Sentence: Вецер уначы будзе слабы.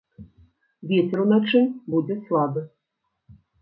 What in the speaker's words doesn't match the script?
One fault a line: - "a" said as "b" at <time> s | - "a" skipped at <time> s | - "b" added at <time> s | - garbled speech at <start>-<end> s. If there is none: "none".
none